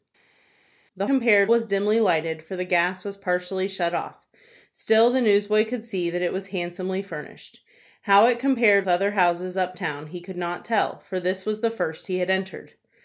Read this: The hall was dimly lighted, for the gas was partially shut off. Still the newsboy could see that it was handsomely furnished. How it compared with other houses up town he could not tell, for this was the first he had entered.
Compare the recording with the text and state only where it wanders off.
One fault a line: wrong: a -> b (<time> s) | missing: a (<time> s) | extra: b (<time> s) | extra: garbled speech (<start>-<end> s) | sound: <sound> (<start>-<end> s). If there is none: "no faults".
wrong: hall -> compared (1.0 s)
missing: with (8.9 s)